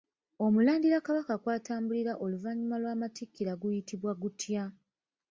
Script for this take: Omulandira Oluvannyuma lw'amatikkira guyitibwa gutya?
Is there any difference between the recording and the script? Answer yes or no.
yes